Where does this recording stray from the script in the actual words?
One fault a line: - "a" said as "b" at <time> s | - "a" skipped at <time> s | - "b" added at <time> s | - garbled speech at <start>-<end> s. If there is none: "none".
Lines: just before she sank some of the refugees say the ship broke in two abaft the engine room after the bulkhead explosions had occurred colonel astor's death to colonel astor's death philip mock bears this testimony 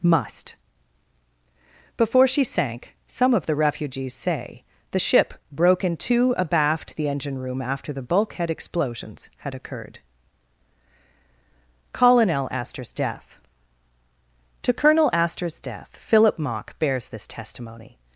- "just" said as "must" at 0.0 s